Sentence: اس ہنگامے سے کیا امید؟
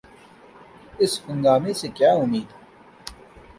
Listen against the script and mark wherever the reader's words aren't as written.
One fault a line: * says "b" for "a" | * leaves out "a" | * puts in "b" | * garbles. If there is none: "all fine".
all fine